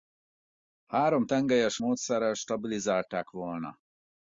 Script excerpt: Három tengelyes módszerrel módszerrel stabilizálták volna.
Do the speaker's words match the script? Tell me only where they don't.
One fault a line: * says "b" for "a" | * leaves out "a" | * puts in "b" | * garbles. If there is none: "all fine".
* leaves out "módszerrel"